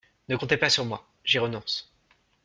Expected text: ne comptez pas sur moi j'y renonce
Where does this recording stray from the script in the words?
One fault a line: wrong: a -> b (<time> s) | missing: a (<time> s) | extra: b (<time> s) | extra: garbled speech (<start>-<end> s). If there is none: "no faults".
no faults